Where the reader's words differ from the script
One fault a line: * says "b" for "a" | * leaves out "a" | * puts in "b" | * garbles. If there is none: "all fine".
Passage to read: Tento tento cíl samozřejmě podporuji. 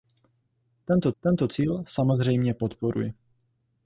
all fine